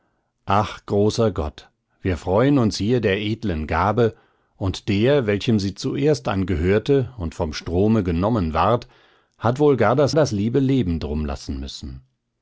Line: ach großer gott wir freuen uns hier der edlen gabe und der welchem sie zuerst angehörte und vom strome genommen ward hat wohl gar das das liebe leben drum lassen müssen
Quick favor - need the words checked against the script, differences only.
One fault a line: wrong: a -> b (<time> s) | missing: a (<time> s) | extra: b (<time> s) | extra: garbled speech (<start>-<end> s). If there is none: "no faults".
no faults